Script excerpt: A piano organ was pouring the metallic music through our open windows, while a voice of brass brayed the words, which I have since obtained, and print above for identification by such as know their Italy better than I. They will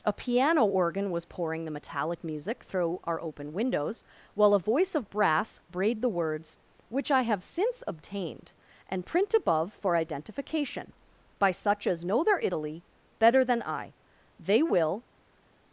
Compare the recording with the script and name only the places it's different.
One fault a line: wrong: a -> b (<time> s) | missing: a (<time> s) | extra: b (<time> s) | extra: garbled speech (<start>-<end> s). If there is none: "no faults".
no faults